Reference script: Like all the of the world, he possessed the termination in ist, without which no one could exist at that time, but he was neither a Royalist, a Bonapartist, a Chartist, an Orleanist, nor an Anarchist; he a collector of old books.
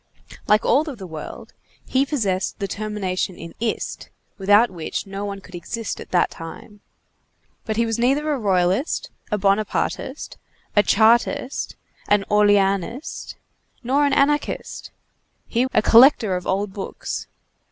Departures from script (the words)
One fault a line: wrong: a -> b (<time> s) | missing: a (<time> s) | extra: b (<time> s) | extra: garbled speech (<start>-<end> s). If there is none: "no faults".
no faults